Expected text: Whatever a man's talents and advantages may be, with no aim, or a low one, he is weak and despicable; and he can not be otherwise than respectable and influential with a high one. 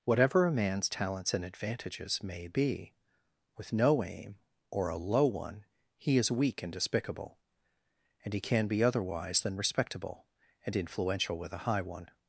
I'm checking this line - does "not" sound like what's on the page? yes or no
no